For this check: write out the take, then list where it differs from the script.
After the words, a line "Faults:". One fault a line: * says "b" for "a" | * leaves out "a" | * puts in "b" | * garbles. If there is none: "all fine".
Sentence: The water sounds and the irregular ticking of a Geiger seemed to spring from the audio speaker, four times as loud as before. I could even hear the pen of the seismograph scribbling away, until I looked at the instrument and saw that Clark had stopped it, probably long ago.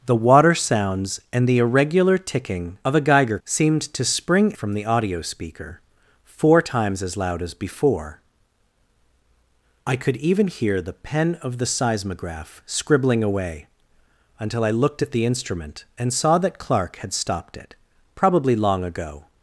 The water sounds and the irregular ticking of a Geiger seemed to spring from the audio speaker, four times as loud as before. I could even hear the pen of the seismograph scribbling away, until I looked at the instrument and saw that Clark had stopped it, probably long ago.
Faults:
all fine